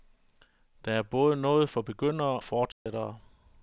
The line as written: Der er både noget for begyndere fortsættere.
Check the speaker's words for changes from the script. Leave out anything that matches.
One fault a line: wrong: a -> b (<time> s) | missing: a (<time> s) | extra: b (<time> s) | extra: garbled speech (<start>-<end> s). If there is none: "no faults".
no faults